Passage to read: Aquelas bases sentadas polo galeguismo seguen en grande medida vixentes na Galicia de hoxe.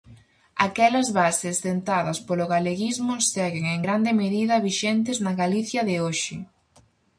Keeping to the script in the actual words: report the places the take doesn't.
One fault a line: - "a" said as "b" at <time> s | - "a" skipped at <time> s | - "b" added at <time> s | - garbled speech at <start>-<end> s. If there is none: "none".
none